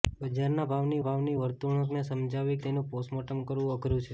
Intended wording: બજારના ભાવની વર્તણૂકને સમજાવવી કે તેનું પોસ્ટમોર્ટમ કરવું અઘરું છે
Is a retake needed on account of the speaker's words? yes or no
yes